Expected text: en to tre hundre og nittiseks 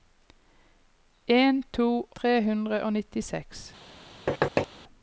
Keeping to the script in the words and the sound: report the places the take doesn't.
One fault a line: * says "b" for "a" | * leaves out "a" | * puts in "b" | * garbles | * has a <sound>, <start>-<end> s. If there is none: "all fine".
* has a thud, 4.3-4.7 s